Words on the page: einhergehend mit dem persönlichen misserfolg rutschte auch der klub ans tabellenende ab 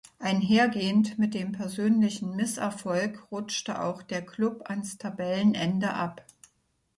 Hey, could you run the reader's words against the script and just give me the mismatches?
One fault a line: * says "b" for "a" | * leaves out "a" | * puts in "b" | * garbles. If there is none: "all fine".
all fine